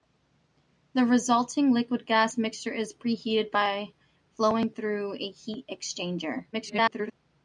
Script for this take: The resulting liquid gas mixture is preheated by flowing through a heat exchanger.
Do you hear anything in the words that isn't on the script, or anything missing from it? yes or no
yes